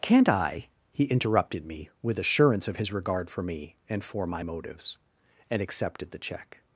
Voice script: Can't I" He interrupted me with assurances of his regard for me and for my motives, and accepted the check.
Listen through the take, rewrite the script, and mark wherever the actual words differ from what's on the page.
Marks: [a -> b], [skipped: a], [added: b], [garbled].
Can't I" He interrupted me with [assurances -> assurance] of his regard for me and for my motives, and accepted the check.